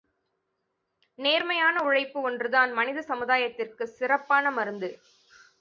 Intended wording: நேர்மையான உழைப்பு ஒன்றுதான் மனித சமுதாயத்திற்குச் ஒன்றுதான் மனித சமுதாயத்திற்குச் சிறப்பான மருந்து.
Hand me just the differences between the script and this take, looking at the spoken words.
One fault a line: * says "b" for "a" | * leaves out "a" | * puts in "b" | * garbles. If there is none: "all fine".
* leaves out "ஒன்றுதான் மனித சமுதாயத்திற்குச்"